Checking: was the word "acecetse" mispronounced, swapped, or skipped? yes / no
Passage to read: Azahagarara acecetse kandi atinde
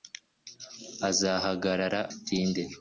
yes